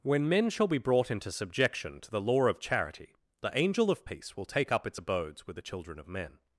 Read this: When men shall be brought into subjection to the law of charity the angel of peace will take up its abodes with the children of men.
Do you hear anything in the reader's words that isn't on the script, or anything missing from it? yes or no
no